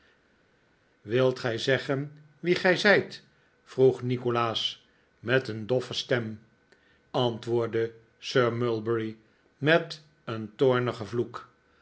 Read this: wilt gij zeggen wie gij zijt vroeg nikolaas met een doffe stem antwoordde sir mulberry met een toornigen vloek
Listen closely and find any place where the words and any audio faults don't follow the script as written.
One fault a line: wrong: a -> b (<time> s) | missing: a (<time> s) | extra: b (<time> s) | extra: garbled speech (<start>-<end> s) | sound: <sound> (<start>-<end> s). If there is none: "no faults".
no faults